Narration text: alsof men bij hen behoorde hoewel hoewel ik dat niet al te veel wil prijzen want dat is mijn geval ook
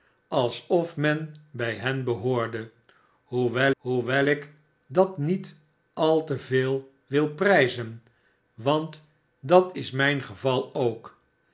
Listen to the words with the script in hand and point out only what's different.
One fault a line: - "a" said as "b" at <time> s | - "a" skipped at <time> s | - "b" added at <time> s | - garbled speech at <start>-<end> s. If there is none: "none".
none